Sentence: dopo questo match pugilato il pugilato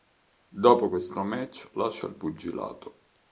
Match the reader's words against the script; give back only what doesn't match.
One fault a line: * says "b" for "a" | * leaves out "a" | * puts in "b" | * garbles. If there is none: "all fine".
* says "lascia" for "pugilato"